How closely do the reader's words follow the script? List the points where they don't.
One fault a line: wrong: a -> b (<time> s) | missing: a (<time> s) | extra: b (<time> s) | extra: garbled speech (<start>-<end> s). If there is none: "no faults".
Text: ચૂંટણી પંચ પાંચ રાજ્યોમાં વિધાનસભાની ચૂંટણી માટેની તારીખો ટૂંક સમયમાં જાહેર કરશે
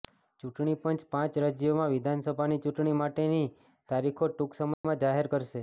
no faults